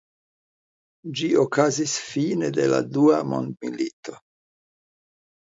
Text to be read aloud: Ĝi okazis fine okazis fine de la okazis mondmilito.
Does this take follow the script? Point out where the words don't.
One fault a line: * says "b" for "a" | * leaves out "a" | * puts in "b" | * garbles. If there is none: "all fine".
* leaves out "okazis fine"
* says "dua" for "okazis"